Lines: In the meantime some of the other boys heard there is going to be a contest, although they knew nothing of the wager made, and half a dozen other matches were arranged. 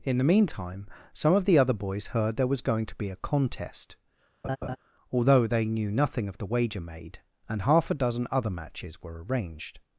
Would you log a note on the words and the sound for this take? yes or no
yes